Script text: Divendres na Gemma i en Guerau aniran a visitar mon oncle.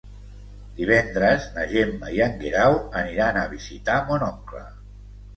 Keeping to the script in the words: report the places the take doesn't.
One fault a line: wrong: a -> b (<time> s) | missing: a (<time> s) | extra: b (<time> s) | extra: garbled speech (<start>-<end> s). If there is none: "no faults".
no faults